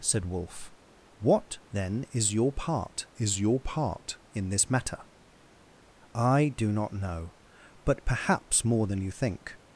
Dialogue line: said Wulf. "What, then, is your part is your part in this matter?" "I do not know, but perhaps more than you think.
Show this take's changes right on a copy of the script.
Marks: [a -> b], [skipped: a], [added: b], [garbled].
said Wulf. "What, then, is your part is your part in this matter?" "I do not know, but perhaps more than you think.